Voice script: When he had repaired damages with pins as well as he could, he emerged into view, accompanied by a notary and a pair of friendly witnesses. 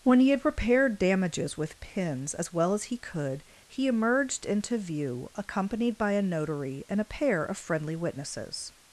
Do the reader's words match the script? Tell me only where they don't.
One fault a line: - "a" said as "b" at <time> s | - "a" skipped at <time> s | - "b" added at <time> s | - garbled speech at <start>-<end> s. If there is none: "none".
none